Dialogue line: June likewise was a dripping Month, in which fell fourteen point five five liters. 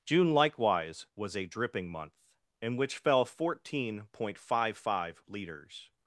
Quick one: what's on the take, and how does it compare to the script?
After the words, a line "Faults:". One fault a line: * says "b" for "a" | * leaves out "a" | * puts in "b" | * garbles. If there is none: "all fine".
June likewise was a dripping Month, in which fell fourteen point five five liters.
Faults:
all fine